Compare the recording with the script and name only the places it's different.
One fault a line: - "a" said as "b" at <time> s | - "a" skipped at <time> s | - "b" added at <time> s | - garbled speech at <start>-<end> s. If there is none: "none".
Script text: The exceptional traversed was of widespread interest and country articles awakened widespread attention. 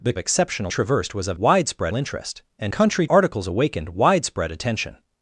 none